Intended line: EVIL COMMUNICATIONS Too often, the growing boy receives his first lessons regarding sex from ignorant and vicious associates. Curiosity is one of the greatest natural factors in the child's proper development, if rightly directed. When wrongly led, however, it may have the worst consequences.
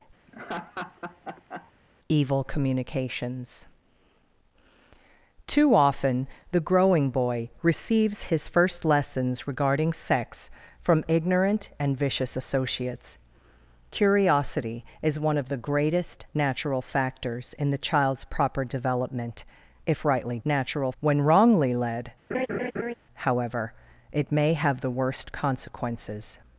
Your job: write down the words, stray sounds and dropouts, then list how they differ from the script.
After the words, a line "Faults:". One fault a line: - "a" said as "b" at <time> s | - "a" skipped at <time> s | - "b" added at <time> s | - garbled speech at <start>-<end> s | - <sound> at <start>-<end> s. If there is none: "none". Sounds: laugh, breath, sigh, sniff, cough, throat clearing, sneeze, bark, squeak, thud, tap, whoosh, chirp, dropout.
EVIL COMMUNICATIONS Too often, the growing boy receives his first lessons regarding sex from ignorant and vicious associates. Curiosity is one of the greatest natural factors in the child's proper development, if rightly natural. When wrongly led, however, it may have the worst consequences.
Faults:
- laugh at 0.3-1.7 s
- "directed" said as "natural" at 20.4 s
- laugh at 22.3-22.9 s